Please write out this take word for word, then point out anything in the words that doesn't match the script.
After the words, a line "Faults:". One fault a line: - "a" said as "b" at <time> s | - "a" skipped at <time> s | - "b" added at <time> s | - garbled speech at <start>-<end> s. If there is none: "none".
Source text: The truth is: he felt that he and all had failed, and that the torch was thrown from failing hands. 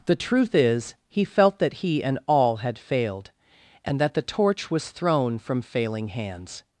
The truth is: he felt that he and all had failed, and that the torch was thrown from failing hands.
Faults:
none